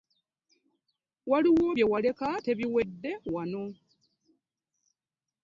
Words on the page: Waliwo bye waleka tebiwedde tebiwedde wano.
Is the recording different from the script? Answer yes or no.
yes